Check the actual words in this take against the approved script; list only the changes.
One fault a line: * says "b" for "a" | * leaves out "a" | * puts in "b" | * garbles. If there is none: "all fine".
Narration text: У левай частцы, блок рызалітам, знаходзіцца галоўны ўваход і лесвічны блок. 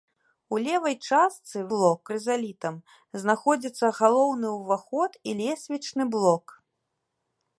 all fine